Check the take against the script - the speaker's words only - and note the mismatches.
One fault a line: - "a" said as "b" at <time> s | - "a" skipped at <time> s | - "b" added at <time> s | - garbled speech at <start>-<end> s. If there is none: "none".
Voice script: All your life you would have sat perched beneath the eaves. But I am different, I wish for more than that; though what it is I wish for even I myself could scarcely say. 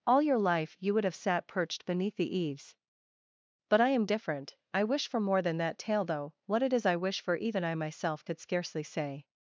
- "tale" added at 5.8 s